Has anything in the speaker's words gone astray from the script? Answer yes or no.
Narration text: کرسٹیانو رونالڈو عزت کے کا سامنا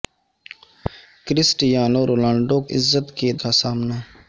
no